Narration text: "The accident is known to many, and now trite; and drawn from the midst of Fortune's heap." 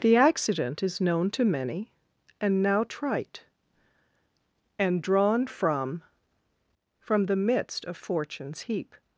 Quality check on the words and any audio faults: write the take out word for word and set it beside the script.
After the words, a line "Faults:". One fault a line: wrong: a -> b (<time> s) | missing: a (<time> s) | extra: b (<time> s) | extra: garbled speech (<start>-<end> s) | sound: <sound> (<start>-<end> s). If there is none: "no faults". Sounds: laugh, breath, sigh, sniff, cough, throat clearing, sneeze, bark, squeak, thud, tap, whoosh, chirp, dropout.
"The accident is known to many, and now trite; and drawn from from the midst of Fortune's heap."
Faults:
extra: from (7.0 s)